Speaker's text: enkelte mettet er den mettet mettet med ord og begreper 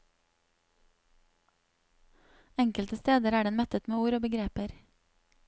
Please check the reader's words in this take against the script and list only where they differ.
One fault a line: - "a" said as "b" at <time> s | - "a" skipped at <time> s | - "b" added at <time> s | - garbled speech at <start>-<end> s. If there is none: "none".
- "mettet" said as "steder" at 3.0 s
- "mettet" skipped at 3.9 s